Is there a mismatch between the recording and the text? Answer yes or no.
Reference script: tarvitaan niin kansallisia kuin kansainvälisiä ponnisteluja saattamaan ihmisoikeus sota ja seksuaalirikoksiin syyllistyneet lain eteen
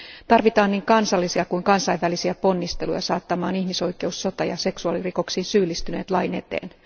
no